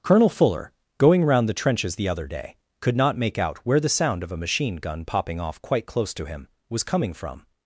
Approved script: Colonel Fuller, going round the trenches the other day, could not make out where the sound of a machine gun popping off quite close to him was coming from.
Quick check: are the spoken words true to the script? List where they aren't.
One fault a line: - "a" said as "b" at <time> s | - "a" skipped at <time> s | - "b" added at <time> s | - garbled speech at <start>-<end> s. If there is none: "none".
none